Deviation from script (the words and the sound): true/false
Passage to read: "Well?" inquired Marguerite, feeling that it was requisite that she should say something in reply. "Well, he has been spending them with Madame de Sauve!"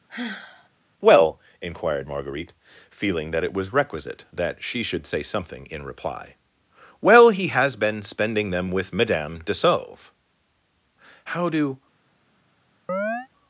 true